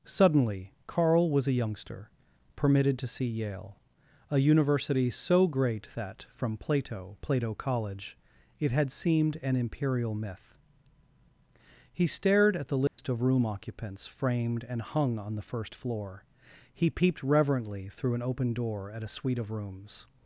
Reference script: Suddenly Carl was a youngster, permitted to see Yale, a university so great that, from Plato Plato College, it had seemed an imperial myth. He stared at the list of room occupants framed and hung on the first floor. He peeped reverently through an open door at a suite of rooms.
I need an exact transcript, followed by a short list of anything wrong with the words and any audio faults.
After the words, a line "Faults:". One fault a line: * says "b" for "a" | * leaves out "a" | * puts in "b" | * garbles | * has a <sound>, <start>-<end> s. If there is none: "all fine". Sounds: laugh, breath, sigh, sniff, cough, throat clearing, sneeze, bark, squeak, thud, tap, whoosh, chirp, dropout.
Suddenly Carl was a youngster, permitted to see Yale, a university so great that, from Plato Plato College, it had seemed an imperial myth. He stared at the list of room occupants framed and hung on the first floor. He peeped reverently through an open door at a suite of rooms.
Faults:
* has a dropout, 12.9-13.0 s